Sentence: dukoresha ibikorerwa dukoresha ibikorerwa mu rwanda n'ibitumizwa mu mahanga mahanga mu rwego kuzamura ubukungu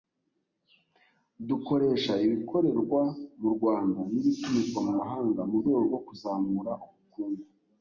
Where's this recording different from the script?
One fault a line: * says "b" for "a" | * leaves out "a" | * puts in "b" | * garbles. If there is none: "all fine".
* leaves out "dukoresha ibikorerwa"
* leaves out "mahanga"
* puts in "rwo"